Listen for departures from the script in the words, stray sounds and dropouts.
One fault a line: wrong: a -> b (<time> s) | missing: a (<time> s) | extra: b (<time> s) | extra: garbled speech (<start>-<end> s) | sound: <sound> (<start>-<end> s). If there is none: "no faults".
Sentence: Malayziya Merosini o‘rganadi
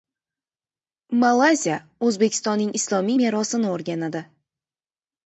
extra: O‘zbekistonning islomiy (2.1 s)